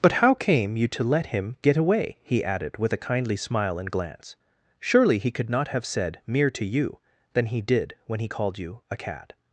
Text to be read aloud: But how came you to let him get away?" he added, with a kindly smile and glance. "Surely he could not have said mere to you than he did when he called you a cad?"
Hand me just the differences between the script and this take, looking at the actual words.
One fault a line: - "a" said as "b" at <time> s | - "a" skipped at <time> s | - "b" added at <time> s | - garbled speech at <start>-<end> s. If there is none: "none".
none